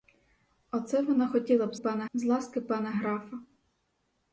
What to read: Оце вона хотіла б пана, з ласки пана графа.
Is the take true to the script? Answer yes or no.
yes